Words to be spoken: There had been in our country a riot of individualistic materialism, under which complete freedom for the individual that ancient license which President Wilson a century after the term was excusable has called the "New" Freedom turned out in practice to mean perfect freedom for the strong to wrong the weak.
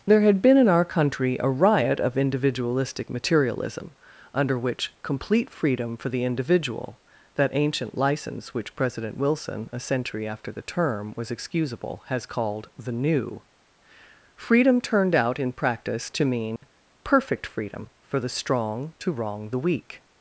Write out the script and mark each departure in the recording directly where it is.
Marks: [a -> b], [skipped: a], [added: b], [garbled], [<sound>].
There had been in our country a riot of individualistic materialism, under which complete freedom for the individual that ancient license which President Wilson a century after the term was excusable has called the "New" Freedom turned out in practice to mean [dropout] perfect freedom for the strong to wrong the weak.